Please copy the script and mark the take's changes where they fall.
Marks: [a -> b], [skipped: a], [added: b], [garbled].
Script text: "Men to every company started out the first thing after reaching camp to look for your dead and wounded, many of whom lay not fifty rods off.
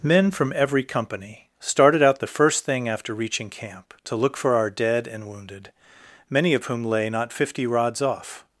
"Men [to -> from] every company started out the first thing after reaching camp to look for [your -> our] dead and wounded, many of whom lay not fifty rods off.